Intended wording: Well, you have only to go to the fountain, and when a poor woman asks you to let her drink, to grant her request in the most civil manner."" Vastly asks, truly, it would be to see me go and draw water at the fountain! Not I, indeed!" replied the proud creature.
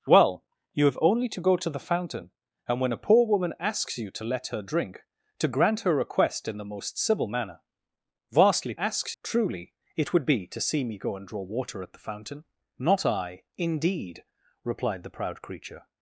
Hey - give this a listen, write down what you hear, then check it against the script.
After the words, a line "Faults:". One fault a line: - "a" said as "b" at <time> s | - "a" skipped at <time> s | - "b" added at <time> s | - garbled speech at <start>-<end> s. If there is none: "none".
Well, you have only to go to the fountain, and when a poor woman asks you to let her drink, to grant her request in the most civil manner."" Vastly asks, truly, it would be to see me go and draw water at the fountain! Not I, indeed!" replied the proud creature.
Faults:
none